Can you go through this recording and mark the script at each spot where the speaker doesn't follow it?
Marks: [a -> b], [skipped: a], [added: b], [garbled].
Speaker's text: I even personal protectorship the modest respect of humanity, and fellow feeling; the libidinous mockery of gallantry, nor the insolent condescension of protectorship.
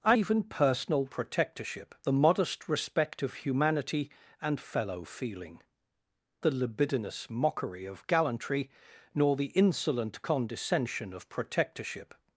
I even personal protectorship the modest respect of humanity, and fellow feeling; the libidinous mockery of gallantry, nor the insolent condescension of protectorship.